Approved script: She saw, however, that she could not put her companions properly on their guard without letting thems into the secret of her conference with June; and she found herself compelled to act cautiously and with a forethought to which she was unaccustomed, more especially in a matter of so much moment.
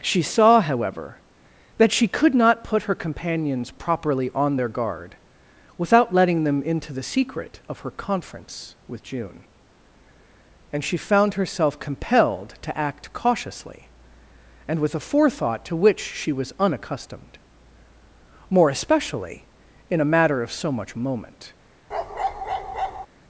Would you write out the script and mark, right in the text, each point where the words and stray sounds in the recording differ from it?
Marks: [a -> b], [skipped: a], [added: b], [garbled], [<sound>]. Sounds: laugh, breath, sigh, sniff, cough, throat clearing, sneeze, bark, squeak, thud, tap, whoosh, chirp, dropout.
She saw, however, that she could not put her companions properly on their guard without letting [thems -> them] into the secret of her conference with June; and she found herself compelled to act cautiously and with a forethought to which she was unaccustomed, more especially in a matter of so much moment. [bark]